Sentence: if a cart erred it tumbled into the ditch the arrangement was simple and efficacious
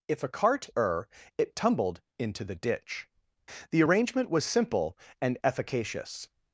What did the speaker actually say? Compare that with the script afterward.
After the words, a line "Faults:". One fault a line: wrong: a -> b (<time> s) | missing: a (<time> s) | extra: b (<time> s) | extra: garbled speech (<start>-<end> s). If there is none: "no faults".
if a cart err it tumbled into the ditch the arrangement was simple and efficacious
Faults:
wrong: erred -> err (0.8 s)